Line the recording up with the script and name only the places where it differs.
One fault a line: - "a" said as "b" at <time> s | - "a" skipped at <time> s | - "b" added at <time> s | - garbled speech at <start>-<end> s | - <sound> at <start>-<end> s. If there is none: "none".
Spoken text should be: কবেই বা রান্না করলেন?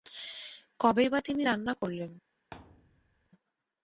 - "তিনি" added at 1.2 s
- thud at 2.5-3.3 s